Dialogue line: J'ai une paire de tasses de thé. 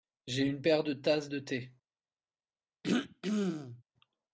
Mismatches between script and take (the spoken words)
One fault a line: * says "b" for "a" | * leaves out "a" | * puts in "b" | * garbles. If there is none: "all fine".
all fine